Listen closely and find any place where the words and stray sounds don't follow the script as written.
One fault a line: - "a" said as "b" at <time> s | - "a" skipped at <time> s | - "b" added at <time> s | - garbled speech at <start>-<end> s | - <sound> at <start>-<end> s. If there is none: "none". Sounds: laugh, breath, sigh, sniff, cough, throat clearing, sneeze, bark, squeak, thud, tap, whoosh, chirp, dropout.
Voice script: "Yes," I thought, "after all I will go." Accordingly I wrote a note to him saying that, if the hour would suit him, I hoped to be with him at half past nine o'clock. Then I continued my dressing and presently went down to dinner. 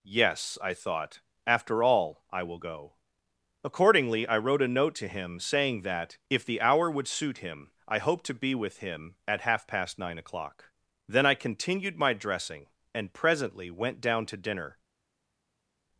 none